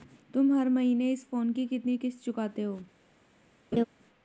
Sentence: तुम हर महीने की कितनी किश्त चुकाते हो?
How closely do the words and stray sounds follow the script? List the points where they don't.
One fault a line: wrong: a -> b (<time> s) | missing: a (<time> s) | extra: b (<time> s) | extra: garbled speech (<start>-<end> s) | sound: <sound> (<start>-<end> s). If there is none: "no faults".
extra: इस फोन (1.1 s)
sound: laugh (3.7-3.8 s)